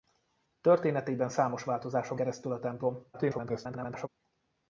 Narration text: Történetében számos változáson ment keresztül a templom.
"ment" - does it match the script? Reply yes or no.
no